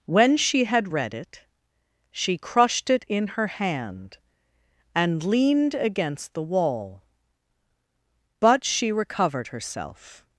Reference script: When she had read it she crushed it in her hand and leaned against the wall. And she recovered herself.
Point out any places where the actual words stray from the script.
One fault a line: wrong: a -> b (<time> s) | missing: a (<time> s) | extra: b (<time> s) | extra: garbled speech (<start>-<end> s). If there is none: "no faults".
wrong: And -> But (8.4 s)